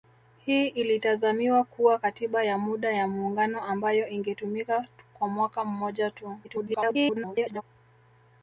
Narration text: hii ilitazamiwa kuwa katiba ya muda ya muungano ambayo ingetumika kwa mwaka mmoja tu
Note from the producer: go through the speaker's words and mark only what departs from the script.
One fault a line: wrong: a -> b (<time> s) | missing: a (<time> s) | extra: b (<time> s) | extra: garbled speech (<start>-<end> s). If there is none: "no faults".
extra: garbled speech (6.4-7.6 s)